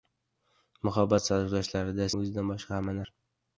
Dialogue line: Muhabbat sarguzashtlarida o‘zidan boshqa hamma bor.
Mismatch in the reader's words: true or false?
false